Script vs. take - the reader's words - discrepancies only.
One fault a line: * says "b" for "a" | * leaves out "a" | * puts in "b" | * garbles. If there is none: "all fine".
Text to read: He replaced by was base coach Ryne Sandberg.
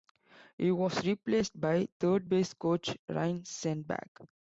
* puts in "was"
* says "third" for "was"